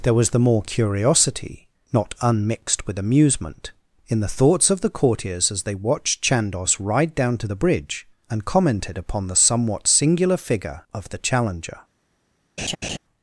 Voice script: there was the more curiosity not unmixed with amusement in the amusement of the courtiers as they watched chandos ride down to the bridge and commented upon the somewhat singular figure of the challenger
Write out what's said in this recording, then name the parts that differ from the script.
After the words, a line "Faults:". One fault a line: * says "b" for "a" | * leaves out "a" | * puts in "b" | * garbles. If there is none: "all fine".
there was the more curiosity not unmixed with amusement in the thoughts of the courtiers as they watched chandos ride down to the bridge and commented upon the somewhat singular figure of the challenger
Faults:
* says "thoughts" for "amusement"